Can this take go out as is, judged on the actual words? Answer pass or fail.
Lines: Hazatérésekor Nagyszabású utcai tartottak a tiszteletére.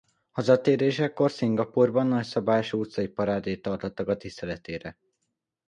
fail